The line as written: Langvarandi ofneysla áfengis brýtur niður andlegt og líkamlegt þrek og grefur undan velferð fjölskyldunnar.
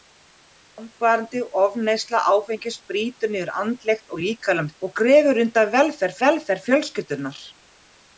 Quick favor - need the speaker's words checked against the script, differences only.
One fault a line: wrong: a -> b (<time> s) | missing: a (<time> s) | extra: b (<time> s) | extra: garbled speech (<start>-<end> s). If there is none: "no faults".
missing: þrek (4.8 s)
extra: velferð (6.2 s)